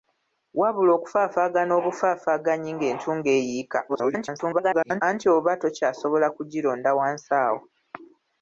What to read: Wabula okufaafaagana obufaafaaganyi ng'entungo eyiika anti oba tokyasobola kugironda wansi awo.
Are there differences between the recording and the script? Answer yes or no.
yes